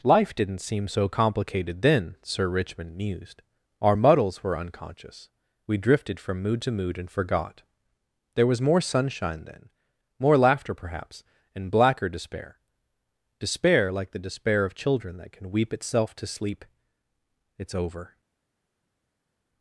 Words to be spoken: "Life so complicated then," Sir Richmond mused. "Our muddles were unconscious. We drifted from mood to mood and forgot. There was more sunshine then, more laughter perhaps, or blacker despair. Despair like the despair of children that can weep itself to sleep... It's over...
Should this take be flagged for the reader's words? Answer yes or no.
yes